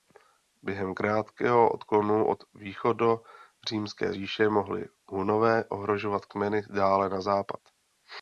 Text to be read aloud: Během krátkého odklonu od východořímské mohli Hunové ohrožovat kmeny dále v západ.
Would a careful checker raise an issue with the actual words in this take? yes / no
yes